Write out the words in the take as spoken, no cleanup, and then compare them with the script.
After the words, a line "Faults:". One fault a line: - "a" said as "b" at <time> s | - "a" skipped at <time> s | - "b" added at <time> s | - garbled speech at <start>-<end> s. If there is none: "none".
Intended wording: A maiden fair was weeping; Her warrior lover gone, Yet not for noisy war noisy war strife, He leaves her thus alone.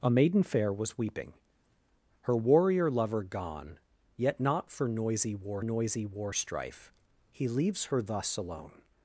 A maiden fair was weeping; Her warrior lover gone, Yet not for noisy war noisy war strife, He leaves her thus alone.
Faults:
none